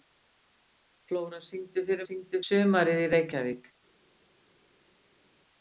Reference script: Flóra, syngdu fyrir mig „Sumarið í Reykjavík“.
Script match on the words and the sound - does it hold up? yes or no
no